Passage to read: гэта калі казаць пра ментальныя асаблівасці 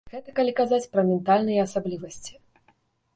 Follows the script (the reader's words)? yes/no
yes